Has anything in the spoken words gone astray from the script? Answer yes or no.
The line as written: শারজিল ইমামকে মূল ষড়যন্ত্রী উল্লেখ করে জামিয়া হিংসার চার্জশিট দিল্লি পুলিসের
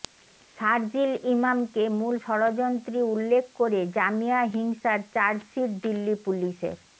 no